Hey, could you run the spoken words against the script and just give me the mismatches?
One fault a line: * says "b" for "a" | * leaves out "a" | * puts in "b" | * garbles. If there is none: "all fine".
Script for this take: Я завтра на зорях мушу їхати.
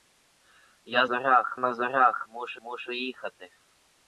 * says "зорях" for "завтра"
* puts in "мушу"